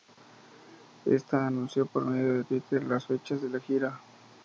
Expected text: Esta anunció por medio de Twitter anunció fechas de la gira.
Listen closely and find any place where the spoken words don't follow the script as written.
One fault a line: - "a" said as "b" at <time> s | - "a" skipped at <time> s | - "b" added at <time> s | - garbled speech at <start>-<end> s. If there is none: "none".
- "anunció" said as "las" at 2.8 s